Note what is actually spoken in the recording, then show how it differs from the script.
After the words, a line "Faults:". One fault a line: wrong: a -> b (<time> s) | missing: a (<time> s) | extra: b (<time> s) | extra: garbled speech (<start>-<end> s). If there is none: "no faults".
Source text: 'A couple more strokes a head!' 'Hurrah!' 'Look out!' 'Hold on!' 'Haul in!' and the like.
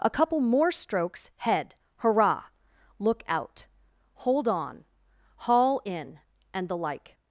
'A couple more strokes head!' 'Hurrah!' 'Look out!' 'Hold on!' 'Haul in!' and the like.
Faults:
missing: a (1.3 s)